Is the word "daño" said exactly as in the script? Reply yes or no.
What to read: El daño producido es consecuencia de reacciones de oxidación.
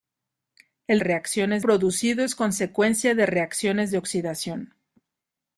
no